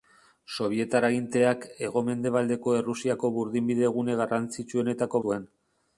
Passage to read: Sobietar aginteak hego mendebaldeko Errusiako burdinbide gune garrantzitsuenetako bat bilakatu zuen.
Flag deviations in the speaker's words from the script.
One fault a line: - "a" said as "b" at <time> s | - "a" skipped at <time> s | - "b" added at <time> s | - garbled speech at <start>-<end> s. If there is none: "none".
- "bat bilakatu" skipped at 5.2 s